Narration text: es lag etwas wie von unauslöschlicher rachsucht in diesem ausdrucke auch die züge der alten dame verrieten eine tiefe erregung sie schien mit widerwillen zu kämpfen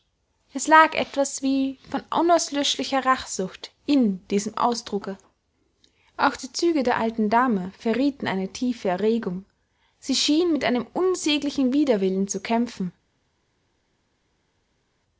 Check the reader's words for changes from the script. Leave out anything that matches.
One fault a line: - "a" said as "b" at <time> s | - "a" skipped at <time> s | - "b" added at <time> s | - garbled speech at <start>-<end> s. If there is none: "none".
- "einem unsäglichen" added at 10.7 s